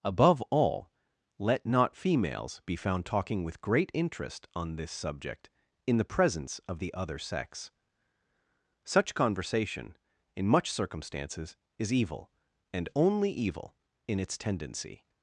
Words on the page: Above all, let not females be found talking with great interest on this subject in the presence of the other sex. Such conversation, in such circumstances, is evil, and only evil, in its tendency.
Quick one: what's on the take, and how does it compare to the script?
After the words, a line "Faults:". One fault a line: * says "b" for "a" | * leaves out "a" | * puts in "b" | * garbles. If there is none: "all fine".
Above all, let not females be found talking with great interest on this subject in the presence of the other sex. Such conversation, in much circumstances, is evil, and only evil, in its tendency.
Faults:
* says "much" for "such"